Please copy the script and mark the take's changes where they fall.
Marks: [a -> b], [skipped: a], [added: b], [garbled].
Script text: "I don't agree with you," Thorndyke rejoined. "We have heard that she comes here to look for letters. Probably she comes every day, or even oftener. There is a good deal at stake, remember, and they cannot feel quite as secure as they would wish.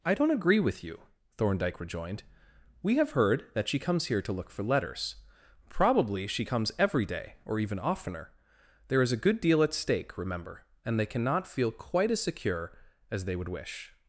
"I don't agree with you," Thorndyke rejoined. "We have heard that she comes here to look for letters. Probably she comes every day, or even oftener. There is a good deal at stake, remember, and they cannot feel quite as secure as they would wish.